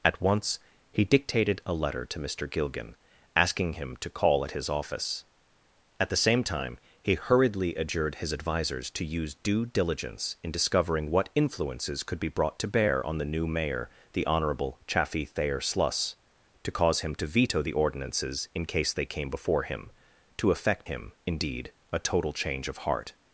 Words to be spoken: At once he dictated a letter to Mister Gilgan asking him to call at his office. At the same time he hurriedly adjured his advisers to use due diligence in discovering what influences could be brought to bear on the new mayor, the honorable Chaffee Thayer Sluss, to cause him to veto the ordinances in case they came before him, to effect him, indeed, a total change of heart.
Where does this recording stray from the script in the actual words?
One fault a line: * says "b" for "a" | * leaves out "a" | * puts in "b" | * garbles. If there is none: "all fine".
all fine